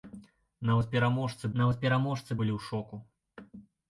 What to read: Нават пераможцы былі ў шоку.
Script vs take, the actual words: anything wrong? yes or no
yes